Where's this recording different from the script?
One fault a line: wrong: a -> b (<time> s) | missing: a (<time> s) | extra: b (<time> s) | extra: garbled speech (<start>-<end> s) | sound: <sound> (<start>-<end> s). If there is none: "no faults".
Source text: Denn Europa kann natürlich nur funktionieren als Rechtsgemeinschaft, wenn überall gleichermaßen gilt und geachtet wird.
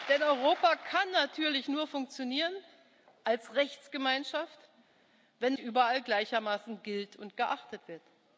no faults